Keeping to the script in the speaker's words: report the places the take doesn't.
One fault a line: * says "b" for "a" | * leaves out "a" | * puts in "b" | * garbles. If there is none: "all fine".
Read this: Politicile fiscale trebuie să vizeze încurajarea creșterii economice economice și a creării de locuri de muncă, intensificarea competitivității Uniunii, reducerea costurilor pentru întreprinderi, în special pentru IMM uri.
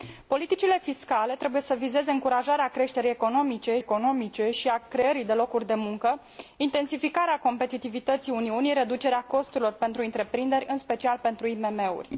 all fine